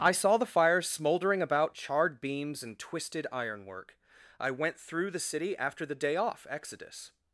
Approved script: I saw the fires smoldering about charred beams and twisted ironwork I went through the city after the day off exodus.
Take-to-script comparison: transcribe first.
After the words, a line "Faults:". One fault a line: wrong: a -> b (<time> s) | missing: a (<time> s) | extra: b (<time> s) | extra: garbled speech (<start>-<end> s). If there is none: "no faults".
I saw the fires smoldering about charred beams and twisted ironwork I went through the city after the day off exodus.
Faults:
no faults